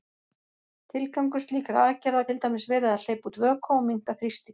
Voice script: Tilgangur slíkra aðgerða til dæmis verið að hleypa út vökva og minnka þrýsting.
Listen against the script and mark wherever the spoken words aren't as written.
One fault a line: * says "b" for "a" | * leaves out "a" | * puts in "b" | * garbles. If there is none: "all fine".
all fine